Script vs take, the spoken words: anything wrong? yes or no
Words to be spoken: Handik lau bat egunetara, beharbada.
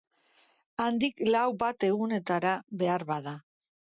no